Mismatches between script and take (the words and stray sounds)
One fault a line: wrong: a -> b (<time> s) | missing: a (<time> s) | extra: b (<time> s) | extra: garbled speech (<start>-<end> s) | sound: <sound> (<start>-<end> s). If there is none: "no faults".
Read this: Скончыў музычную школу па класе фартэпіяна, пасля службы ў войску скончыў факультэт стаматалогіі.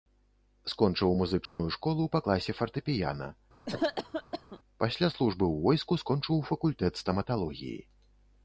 sound: dropout (1.5-1.6 s)
sound: cough (3.7-4.6 s)